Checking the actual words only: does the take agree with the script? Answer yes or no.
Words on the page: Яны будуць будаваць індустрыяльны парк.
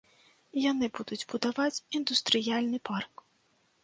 yes